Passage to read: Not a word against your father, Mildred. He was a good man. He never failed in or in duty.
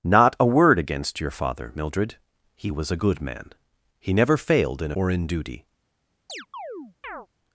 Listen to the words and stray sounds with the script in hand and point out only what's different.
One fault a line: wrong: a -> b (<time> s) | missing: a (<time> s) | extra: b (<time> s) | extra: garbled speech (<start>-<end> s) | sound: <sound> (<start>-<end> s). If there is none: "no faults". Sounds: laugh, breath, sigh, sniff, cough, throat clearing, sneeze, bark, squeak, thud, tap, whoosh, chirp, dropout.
sound: chirp (6.3-7.3 s)